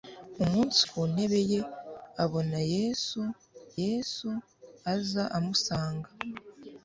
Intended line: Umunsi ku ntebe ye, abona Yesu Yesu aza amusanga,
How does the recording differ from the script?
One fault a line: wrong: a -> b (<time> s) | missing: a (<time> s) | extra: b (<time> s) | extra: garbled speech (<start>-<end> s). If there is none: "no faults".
no faults